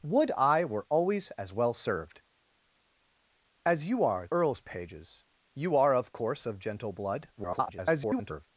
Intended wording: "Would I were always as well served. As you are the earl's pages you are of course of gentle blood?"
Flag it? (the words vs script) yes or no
yes